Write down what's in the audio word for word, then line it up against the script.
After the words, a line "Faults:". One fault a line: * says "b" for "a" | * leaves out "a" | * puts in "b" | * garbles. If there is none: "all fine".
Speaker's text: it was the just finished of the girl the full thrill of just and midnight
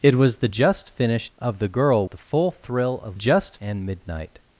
it was the just finished of the girl the full thrill of just and midnight
Faults:
all fine